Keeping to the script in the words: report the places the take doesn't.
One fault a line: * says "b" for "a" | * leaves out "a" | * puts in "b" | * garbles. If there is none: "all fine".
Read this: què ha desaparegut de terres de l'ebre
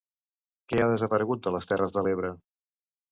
* puts in "les"